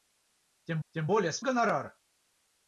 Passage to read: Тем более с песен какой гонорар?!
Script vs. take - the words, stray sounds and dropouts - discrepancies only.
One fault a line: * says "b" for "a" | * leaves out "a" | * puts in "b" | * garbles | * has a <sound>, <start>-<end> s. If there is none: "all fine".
* puts in "тем"
* leaves out "песен какой"